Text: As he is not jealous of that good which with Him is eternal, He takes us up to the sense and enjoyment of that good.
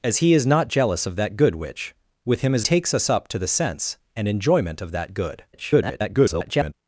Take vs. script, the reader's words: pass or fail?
fail